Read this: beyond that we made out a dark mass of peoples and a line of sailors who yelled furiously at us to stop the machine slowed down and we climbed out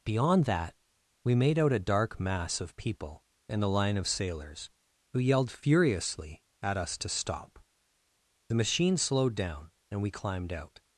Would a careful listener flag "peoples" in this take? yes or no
yes